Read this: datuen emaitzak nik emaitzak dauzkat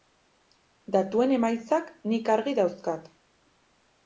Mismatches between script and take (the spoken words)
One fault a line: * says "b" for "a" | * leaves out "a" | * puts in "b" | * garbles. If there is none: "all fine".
* says "argi" for "emaitzak"